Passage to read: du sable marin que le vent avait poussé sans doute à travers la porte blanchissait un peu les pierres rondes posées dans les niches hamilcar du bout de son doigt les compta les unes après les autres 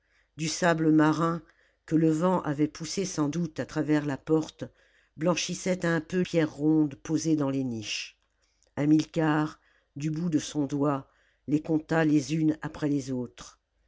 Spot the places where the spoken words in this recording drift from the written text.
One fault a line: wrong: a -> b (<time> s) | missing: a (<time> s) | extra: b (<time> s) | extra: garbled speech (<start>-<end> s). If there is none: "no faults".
missing: les (6.2 s)